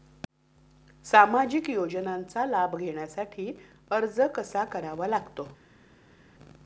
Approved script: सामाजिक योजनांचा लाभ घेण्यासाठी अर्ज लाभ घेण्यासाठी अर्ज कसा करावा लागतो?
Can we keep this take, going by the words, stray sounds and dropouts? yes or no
no